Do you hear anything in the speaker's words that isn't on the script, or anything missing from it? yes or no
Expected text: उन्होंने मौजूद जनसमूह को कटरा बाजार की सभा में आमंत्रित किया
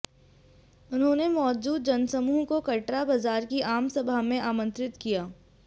yes